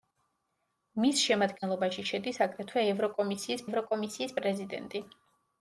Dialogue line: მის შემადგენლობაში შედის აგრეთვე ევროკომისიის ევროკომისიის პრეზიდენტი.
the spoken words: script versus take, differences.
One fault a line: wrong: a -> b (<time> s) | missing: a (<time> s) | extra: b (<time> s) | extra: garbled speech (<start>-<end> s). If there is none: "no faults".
no faults